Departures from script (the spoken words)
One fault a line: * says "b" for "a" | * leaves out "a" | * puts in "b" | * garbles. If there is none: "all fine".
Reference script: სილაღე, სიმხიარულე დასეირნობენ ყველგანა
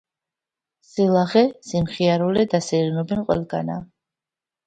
all fine